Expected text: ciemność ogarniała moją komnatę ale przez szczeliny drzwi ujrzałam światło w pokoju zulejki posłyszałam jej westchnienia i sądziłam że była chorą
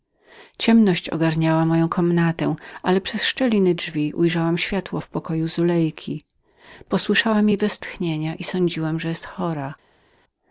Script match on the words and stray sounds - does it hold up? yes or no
yes